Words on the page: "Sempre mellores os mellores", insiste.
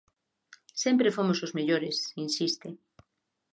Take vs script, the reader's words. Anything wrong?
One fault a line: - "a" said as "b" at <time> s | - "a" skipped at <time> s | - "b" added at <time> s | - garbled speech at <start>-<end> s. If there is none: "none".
- "mellores" said as "fomos" at 1.2 s